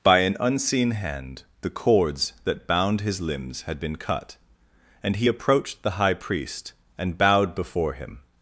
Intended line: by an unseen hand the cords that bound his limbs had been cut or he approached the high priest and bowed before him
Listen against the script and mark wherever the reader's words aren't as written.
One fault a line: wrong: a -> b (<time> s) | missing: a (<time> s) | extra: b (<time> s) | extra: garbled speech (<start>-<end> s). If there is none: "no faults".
wrong: or -> and (5.0 s)